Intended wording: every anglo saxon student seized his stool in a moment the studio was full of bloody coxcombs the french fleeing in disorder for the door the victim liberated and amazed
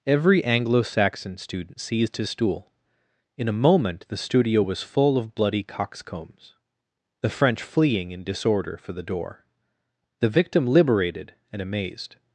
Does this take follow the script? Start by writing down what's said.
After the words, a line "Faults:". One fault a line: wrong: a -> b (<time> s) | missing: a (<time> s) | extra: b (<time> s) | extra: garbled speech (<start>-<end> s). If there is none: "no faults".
every anglo saxon student seized his stool in a moment the studio was full of bloody coxcombs the french fleeing in disorder for the door the victim liberated and amazed
Faults:
no faults